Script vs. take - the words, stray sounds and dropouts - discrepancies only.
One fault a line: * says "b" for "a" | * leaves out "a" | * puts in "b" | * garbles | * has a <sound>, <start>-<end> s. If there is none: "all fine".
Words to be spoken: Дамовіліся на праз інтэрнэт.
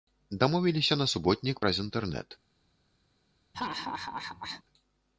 * puts in "суботнік"
* has a laugh, 3.5-4.6 s